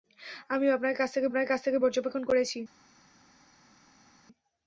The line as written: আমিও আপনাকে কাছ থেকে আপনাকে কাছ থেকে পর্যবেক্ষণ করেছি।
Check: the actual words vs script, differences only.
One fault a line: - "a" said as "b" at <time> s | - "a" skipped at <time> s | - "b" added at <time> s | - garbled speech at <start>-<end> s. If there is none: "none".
none